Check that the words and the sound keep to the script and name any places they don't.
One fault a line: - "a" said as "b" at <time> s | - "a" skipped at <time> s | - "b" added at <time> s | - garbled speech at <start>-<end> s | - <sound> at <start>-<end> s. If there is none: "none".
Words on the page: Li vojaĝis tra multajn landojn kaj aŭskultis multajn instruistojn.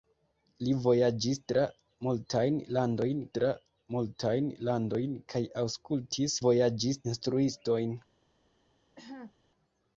- "tra multajn landojn" added at 3.4 s
- "multajn" said as "vojaĝis" at 6.4 s
- cough at 9.0-9.3 s